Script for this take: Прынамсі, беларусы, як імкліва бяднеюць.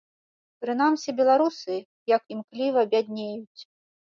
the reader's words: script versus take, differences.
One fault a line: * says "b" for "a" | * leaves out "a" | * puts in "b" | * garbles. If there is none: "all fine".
all fine